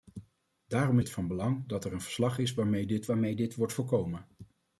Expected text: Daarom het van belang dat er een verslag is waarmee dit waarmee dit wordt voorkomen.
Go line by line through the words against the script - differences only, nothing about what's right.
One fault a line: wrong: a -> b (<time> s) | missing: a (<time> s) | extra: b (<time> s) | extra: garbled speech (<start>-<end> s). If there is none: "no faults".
no faults